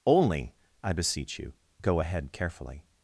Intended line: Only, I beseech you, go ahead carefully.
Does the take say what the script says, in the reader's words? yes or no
yes